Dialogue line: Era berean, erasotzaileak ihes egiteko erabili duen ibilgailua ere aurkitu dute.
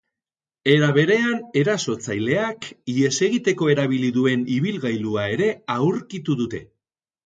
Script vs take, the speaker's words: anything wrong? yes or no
no